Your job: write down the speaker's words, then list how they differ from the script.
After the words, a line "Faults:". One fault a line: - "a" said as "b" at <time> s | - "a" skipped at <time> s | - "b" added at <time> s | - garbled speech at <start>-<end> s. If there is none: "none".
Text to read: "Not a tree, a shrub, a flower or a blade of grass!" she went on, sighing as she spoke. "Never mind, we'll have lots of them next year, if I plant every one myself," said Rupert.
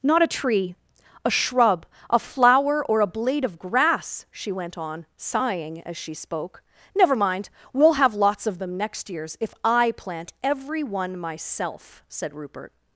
"Not a tree, a shrub, a flower or a blade of grass!" she went on, sighing as she spoke. "Never mind, we'll have lots of them next years, if I plant every one myself," said Rupert.
Faults:
- "year" said as "years" at 9.1 s